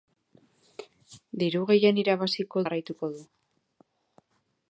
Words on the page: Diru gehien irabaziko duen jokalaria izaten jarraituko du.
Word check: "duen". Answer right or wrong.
wrong